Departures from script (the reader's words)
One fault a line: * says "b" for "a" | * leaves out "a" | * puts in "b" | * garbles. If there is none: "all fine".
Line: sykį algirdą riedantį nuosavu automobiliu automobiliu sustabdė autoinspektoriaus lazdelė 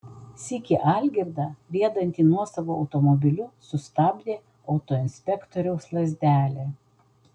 * leaves out "automobiliu"